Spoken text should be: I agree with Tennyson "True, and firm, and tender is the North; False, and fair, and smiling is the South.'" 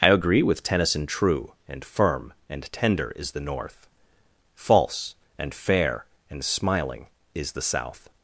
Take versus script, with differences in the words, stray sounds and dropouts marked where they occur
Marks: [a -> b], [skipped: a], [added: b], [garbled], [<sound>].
I agree with Tennyson "True, and firm, and tender is the North; False, and fair, and smiling is the South.'"